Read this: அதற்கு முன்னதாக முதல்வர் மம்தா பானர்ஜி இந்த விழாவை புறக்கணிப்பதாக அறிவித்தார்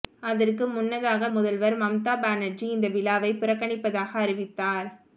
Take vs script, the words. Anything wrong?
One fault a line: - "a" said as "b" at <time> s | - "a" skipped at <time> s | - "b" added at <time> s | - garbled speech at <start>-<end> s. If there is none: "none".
none